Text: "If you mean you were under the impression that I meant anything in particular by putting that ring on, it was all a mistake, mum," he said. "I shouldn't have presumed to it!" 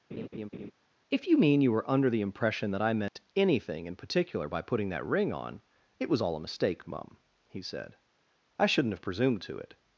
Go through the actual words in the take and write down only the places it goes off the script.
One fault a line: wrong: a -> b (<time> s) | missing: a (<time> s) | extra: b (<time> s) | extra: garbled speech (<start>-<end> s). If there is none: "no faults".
no faults